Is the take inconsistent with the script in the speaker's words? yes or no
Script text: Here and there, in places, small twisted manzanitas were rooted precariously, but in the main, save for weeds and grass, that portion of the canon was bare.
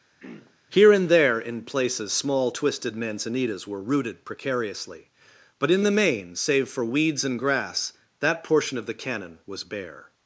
no